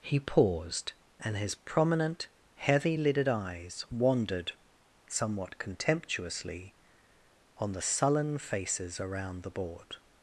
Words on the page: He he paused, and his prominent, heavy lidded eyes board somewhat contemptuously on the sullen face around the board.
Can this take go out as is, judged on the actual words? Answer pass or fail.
fail